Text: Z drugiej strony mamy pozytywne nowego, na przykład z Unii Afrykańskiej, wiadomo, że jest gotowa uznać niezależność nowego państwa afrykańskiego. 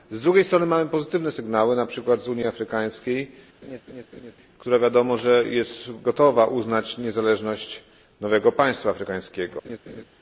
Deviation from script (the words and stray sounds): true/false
true